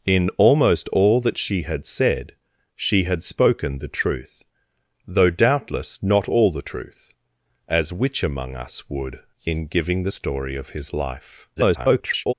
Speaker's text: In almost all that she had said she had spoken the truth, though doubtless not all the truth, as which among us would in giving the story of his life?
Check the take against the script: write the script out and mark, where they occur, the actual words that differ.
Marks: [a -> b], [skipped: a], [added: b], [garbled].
In almost all that she had said she had spoken the truth, though doubtless not all the truth, as which among us would in giving the story of his life? [garbled]